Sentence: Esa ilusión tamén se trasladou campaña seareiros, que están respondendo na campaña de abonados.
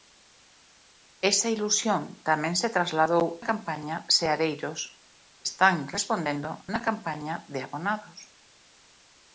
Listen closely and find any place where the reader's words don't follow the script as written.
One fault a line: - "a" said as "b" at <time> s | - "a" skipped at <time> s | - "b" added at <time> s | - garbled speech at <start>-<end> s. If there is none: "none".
none